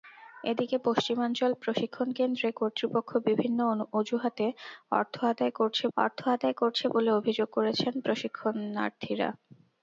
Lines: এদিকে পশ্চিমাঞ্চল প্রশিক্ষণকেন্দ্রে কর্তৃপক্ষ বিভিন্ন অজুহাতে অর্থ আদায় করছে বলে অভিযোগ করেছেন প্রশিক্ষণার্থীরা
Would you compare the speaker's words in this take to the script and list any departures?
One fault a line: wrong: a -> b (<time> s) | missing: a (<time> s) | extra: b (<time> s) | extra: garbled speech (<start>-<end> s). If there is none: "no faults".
extra: অর্থ আদায় করছে (6.0 s)